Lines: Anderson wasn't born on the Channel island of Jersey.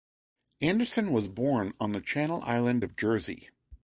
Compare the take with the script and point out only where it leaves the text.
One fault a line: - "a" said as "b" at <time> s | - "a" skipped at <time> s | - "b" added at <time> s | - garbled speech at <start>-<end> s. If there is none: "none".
- "wasn't" said as "was" at 1.1 s